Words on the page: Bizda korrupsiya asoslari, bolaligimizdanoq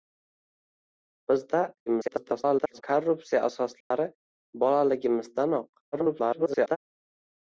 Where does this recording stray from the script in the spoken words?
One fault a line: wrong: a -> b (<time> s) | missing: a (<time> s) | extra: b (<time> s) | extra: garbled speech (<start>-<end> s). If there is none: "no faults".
extra: garbled speech (1.9-2.8 s)
extra: garbled speech (5.9-6.8 s)